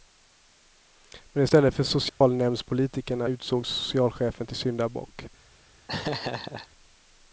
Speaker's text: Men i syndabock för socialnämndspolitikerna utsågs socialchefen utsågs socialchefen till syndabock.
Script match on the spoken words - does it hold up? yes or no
no